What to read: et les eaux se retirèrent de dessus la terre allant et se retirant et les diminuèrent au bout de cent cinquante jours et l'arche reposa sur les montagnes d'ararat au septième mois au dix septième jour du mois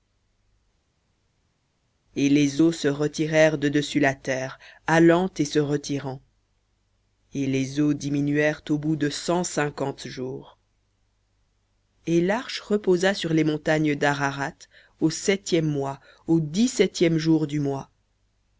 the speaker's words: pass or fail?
fail